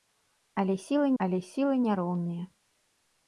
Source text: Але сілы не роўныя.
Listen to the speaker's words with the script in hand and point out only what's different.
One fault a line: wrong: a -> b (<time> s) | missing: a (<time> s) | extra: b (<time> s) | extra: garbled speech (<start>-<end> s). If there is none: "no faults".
extra: але сілы (1.2 s)